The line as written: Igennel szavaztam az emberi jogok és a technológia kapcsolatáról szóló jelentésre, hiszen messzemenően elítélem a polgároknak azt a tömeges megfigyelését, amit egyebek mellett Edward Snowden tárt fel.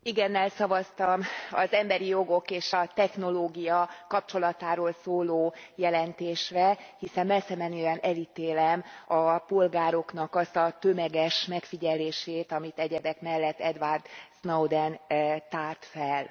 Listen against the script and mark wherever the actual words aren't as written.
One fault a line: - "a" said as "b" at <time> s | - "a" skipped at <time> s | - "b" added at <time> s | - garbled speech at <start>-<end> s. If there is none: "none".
none